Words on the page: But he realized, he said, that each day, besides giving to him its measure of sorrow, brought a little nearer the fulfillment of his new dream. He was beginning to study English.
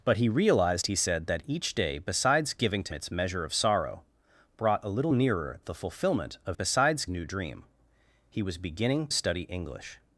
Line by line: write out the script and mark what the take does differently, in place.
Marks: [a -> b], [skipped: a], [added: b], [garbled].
But he realized, he said, that each day, besides giving to [skipped: him] its measure of sorrow, brought a little nearer the fulfillment of [his -> besides] new dream. He was beginning [skipped: to] study English.